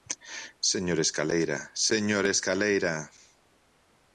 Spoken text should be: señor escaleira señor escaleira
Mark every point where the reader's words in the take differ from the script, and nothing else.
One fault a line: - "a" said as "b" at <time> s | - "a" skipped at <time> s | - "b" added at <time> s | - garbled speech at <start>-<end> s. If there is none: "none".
none